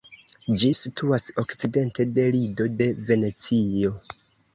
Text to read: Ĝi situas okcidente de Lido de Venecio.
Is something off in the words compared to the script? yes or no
no